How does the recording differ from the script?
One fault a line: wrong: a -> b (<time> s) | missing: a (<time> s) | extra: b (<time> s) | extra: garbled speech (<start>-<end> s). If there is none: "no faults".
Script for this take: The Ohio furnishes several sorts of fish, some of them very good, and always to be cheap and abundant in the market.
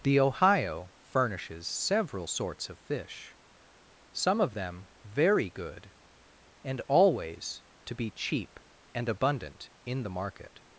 no faults